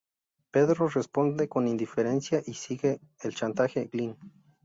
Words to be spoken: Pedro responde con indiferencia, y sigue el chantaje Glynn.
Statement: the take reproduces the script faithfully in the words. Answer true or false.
true